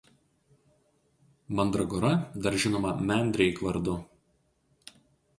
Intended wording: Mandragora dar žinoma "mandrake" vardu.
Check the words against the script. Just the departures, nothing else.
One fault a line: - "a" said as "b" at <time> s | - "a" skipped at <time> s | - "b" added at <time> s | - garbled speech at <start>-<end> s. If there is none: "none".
none